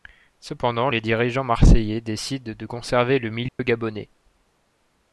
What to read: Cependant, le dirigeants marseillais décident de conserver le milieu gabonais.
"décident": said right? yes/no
yes